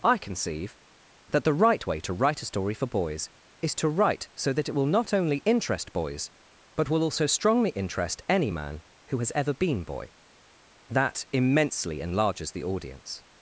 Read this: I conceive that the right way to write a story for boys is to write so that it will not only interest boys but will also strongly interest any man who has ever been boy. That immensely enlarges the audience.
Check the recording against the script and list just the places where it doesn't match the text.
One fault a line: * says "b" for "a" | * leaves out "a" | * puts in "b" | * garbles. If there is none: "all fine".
all fine